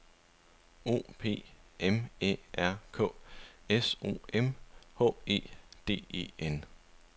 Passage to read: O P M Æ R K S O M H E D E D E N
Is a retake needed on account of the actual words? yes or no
yes